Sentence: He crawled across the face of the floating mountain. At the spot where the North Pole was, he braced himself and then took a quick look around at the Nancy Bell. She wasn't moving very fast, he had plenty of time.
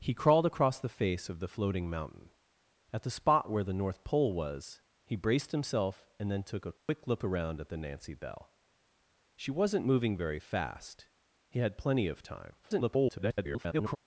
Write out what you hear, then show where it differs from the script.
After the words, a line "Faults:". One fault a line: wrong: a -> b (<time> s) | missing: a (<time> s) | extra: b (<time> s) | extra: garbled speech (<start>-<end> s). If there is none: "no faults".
He crawled across the face of the floating mountain. At the spot where the North Pole was, he braced himself and then took a quick look around at the Nancy Bell. She wasn't moving very fast, he had plenty of time. [garbled]
Faults:
extra: garbled speech (12.6-14.0 s)